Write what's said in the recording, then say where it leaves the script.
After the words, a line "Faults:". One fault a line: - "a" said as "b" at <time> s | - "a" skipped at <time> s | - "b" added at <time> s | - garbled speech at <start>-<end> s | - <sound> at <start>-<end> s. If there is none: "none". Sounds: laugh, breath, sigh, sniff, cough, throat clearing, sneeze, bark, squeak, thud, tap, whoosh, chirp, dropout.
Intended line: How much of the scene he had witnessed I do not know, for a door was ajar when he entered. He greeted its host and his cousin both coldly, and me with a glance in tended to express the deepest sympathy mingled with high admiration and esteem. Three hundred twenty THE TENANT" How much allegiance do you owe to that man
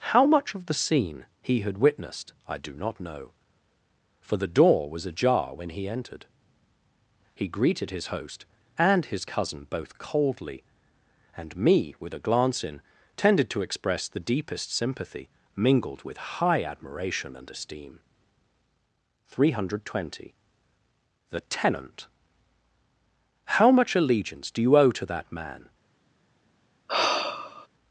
How much of the scene he had witnessed I do not know, for the door was ajar when he entered. He greeted his host and his cousin both coldly, and me with a glance in tended to express the deepest sympathy mingled with high admiration and esteem. Three hundred twenty THE TENANT" How much allegiance do you owe to that man
Faults:
- "a" said as "the" at 4.3 s
- "its" said as "his" at 7.9 s
- sigh at 26.9-27.7 s